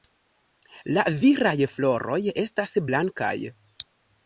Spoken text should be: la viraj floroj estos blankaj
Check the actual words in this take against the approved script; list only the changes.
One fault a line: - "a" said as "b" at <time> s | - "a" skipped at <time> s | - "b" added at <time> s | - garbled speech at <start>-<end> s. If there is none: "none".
- "estos" said as "estas" at 2.4 s